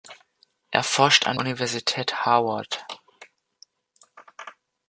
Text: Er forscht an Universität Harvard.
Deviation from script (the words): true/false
false